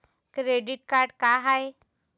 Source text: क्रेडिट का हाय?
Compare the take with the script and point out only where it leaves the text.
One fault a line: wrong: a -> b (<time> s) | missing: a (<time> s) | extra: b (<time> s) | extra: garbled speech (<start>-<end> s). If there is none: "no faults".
extra: कार्ड (0.9 s)